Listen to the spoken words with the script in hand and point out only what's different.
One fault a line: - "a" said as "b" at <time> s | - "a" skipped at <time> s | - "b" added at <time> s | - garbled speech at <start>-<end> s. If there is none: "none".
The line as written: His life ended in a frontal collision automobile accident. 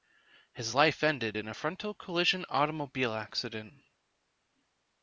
none